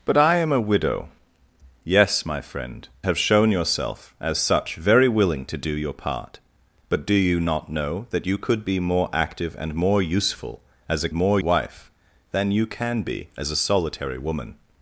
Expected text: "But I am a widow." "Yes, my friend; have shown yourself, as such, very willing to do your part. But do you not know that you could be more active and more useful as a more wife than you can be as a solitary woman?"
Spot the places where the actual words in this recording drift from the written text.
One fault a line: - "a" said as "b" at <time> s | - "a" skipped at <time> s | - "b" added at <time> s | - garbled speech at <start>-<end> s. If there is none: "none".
none